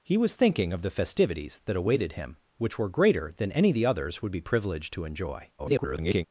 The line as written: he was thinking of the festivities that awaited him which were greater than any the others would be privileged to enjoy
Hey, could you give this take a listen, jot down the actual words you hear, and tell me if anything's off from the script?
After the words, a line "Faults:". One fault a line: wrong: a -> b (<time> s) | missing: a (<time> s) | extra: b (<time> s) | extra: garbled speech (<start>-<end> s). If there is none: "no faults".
he was thinking of the festivities that awaited him which were greater than any the others would be privileged to enjoy [garbled]
Faults:
extra: garbled speech (5.6-6.2 s)